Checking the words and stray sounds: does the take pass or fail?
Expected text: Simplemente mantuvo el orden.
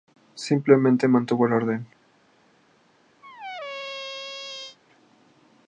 fail